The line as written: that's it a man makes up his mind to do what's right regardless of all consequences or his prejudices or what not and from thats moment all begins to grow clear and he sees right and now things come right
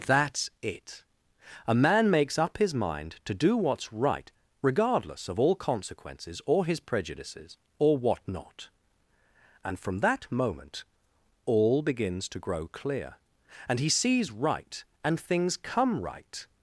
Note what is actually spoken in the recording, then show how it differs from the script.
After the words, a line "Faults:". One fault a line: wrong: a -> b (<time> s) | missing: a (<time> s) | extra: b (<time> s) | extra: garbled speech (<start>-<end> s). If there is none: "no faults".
that's it a man makes up his mind to do what's right regardless of all consequences or his prejudices or what not and from that moment all begins to grow clear and he sees right and things come right
Faults:
wrong: thats -> that (10.0 s)
missing: now (15.2 s)